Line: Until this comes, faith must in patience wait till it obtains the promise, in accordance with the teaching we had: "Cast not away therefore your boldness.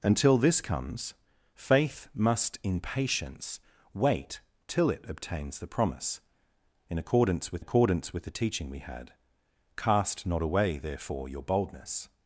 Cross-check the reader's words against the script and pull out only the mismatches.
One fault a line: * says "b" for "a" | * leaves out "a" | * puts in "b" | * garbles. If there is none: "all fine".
* puts in "accordance with"